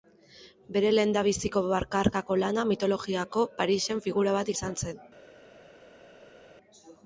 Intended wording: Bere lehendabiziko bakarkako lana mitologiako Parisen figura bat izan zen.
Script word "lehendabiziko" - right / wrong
right